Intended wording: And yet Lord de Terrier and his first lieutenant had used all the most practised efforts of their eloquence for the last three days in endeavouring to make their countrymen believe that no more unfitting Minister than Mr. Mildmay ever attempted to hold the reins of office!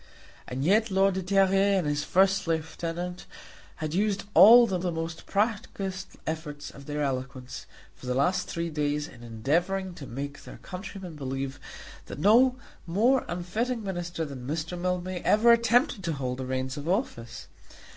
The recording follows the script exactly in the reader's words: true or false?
false